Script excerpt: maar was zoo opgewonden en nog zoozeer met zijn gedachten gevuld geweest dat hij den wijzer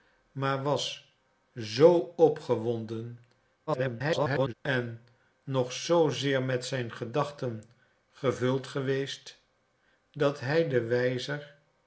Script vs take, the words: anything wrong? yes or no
yes